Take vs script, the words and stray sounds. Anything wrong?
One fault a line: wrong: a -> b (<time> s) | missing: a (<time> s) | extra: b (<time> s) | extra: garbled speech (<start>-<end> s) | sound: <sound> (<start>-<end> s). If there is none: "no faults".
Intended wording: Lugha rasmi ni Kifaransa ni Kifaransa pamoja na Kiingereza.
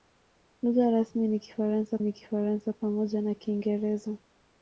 no faults